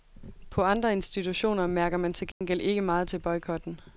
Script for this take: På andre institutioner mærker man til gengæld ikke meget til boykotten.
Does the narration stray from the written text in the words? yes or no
no